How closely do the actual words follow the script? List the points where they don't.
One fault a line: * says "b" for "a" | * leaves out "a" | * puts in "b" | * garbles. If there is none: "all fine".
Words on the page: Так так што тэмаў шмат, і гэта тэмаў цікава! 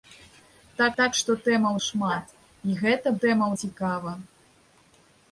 all fine